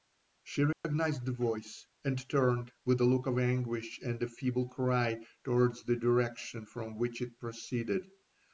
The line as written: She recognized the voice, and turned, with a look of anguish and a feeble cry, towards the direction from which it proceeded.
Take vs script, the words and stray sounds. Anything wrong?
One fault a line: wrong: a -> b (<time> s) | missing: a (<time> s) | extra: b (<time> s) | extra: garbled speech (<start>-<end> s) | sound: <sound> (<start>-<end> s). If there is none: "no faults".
sound: dropout (0.7-0.8 s)